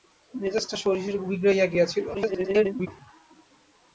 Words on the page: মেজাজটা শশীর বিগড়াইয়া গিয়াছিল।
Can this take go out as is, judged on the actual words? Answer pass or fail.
fail